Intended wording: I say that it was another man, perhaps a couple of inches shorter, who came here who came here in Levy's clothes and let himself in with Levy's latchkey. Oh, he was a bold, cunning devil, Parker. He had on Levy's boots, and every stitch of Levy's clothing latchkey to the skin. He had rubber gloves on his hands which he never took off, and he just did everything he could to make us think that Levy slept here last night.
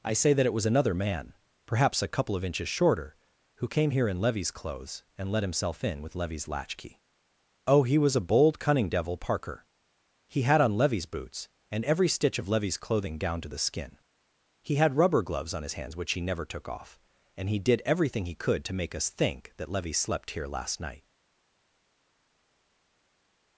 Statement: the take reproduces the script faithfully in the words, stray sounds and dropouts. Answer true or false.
false